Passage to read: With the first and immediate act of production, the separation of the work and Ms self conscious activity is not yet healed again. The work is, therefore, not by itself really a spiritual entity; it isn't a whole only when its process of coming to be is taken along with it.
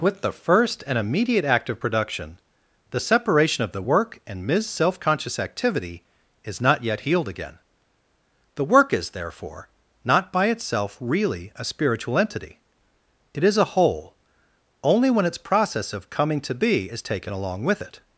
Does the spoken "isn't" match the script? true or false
false